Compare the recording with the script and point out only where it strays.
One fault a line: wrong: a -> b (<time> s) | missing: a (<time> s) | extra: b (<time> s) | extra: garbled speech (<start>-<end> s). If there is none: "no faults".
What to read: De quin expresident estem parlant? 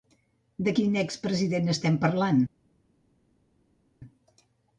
no faults